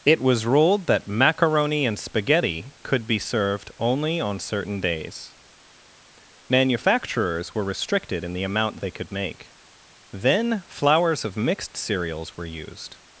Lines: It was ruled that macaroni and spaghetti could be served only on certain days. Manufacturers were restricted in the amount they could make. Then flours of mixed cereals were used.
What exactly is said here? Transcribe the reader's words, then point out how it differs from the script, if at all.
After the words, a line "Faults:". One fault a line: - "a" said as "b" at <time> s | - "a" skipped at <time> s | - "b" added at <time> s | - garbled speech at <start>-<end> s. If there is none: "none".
It was ruled that macaroni and spaghetti could be served only on certain days. Manufacturers were restricted in the amount they could make. Then flours of mixed cereals were used.
Faults:
none